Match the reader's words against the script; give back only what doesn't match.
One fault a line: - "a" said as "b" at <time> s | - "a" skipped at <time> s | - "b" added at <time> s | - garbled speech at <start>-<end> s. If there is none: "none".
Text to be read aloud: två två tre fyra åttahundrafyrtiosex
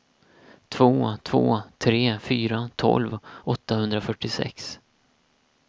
- "tolv" added at 2.8 s